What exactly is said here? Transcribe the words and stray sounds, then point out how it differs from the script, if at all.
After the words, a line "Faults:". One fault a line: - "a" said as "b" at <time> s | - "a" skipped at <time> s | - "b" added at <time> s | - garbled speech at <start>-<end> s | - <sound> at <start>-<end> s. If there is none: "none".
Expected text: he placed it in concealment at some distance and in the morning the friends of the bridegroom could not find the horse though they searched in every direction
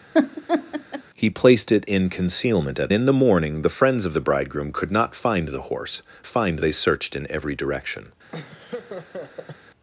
he placed it in concealment at in the morning the friends of the bridegroom could not find the horse find they searched in every direction
Faults:
- laugh at 0.1-1.0 s
- "some distance and" skipped at 2.9 s
- "though" said as "find" at 6.3 s
- laugh at 8.3-9.6 s